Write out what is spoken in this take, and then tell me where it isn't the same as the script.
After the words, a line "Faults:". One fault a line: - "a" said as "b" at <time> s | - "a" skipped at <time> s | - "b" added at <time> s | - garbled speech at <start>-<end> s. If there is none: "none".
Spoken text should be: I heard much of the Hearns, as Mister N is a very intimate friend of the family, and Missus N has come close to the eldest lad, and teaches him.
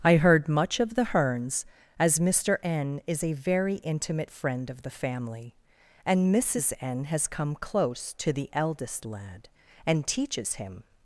I heard much of the Hearns, as Mister N is a very intimate friend of the family, and Missus N has come close to the eldest lad, and teaches him.
Faults:
none